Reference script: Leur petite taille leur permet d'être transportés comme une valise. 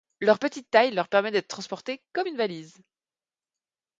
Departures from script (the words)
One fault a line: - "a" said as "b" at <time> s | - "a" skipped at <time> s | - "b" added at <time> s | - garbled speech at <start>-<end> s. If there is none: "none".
none